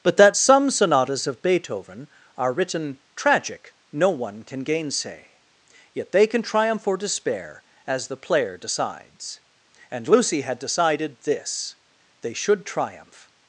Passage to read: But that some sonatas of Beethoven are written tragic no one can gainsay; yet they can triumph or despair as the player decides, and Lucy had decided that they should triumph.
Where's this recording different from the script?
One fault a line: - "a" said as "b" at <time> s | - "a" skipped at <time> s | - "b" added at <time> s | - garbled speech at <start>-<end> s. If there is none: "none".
- "that" said as "this" at 11.2 s